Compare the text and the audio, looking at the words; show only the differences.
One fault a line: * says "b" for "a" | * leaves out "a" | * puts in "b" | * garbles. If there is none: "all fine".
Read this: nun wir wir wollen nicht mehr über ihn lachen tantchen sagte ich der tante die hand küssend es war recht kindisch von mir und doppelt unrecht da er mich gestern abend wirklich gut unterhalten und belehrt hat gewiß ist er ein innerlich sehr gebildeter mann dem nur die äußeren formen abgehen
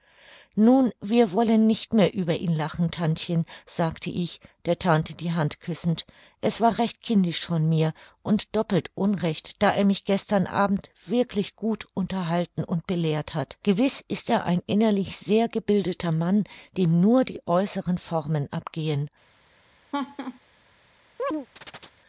* leaves out "wir"